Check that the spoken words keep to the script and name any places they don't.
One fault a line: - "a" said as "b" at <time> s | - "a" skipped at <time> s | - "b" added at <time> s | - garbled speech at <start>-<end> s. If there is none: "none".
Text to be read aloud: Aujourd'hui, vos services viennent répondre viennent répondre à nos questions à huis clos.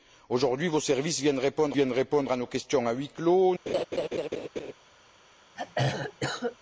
none